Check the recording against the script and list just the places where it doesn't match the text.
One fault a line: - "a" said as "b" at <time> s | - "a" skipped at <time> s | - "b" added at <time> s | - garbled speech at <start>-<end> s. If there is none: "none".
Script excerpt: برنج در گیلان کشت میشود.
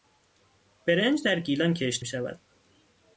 none